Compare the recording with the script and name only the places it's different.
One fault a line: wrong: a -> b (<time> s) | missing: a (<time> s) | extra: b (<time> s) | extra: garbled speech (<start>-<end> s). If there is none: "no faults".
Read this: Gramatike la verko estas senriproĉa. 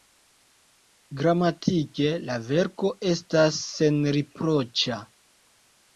no faults